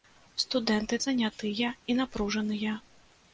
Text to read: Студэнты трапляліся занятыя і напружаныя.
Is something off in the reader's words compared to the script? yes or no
yes